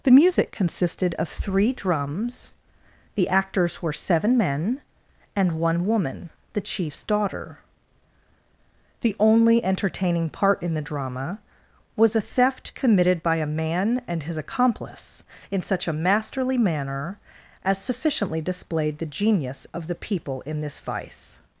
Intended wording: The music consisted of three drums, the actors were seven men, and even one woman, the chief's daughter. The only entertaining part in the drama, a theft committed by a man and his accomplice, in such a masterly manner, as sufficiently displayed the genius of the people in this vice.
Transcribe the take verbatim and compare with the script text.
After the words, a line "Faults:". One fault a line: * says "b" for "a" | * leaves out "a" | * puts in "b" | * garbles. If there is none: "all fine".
The music consisted of three drums, the actors were seven men, and one woman, the chief's daughter. The only entertaining part in the drama, was a theft committed by a man and his accomplice, in such a masterly manner, as sufficiently displayed the genius of the people in this vice.
Faults:
* leaves out "even"
* puts in "was"